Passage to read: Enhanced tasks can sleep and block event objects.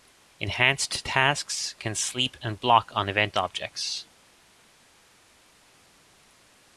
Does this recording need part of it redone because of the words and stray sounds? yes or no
yes